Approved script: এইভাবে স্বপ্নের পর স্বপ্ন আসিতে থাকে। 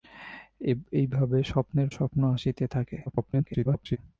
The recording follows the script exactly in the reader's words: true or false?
false